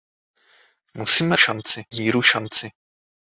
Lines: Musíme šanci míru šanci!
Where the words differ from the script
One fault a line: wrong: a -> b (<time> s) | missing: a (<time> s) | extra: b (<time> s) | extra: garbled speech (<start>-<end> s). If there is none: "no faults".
no faults